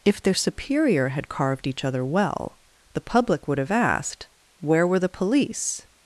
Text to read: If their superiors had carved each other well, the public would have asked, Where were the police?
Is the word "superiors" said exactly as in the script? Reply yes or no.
no